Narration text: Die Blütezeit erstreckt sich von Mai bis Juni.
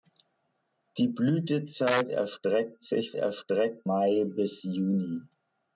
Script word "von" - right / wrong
wrong